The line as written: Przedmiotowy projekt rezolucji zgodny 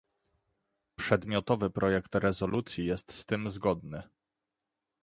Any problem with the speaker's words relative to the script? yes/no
yes